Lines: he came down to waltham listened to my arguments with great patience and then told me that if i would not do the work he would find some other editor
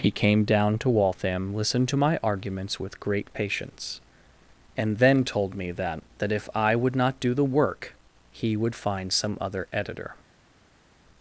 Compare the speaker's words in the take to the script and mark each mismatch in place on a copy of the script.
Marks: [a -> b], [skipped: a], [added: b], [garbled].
he came down to waltham listened to my arguments with great patience and then told me that [added: that] if i would not do the work he would find some other editor